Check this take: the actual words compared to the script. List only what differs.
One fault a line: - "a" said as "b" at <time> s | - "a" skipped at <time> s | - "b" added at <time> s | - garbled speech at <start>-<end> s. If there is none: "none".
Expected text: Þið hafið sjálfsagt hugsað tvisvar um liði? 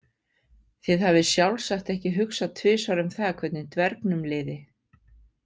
- "ekki" added at 1.9 s
- "það hvernig dvergnum" added at 3.2 s